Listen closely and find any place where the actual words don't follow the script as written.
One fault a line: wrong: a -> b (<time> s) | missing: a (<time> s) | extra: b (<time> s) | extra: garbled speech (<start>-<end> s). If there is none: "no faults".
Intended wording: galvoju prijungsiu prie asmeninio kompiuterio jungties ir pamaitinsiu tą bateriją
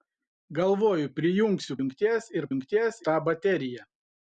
missing: prie asmeninio kompiuterio (1.8 s)
wrong: pamaitinsiu -> jungties (2.5 s)